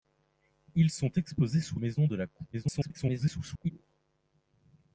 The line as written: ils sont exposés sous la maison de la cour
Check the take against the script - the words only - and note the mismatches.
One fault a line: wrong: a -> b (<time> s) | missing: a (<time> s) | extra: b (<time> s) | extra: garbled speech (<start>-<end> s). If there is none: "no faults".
missing: la (1.8 s)
extra: garbled speech (2.5-3.7 s)